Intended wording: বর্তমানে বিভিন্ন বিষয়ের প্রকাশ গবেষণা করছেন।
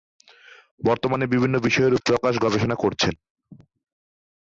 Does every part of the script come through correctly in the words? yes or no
yes